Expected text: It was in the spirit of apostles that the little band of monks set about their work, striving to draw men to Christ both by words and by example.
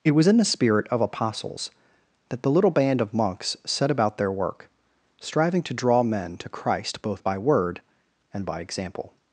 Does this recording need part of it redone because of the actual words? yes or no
yes